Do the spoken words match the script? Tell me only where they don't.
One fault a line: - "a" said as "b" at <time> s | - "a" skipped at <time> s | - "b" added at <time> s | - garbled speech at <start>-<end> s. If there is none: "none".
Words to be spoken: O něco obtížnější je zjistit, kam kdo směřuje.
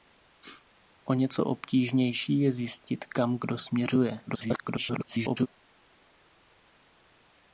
- garbled speech at 4.3-5.5 s